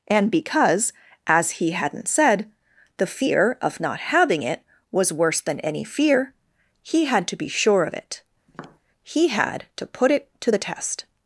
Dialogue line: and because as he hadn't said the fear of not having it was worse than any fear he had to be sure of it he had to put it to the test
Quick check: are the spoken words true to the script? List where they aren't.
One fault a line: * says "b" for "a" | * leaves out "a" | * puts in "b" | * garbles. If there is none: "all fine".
all fine